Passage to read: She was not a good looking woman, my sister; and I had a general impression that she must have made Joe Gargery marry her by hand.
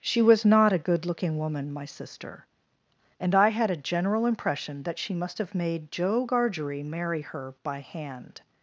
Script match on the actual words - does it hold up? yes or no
yes